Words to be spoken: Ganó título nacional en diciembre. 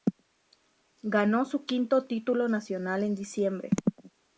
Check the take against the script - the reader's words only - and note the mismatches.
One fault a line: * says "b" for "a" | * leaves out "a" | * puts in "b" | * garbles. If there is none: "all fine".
* puts in "su quinto"